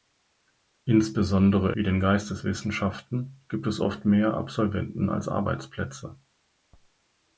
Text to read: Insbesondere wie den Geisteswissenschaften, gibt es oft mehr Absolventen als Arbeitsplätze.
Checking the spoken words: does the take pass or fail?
pass